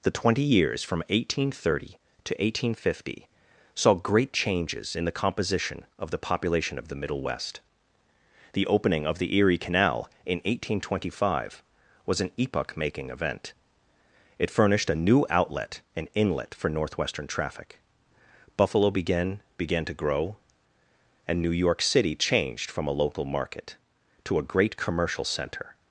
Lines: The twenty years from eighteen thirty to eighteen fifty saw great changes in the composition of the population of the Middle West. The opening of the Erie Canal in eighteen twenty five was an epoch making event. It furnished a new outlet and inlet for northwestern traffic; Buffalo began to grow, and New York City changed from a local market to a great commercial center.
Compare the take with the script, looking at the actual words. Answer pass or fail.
fail